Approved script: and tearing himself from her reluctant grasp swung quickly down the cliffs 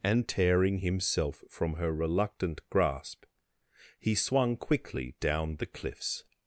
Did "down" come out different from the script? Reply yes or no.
no